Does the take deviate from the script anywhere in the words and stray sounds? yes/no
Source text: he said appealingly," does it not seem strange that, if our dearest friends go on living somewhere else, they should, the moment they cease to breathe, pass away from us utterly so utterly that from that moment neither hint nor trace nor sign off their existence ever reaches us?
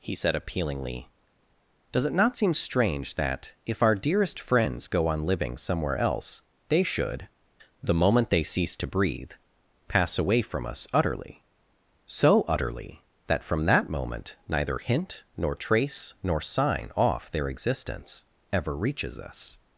no